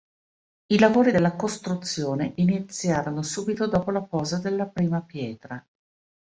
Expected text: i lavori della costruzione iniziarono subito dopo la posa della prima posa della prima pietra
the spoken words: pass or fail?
fail